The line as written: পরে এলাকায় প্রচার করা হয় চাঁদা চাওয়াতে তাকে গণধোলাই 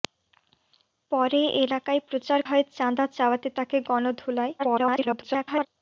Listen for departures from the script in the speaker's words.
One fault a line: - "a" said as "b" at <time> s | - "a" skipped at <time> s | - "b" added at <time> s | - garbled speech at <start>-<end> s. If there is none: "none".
- "করা" skipped at 2.4 s
- garbled speech at 4.6-5.7 s